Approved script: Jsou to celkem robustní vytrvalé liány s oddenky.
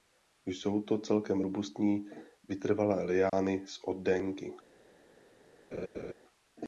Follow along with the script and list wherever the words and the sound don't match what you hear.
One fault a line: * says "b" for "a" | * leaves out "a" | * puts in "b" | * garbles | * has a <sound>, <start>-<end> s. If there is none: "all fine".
* has a dropout, 3.3-3.3 s
* has a laugh, 5.7-6.1 s